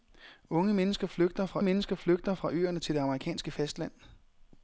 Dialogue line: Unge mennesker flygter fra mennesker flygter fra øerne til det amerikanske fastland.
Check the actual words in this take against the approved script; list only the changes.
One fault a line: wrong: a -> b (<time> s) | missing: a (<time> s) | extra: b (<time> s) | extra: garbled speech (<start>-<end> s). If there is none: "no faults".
no faults